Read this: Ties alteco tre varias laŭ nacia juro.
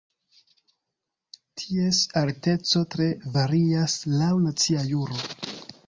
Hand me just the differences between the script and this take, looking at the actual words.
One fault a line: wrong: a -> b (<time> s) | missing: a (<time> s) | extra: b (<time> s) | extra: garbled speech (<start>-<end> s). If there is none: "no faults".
no faults